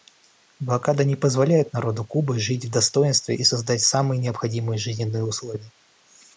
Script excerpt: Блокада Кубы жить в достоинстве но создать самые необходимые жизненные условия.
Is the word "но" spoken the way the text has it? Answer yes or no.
no